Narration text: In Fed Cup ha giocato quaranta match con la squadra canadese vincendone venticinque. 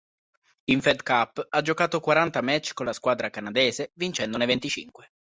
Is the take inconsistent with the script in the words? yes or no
no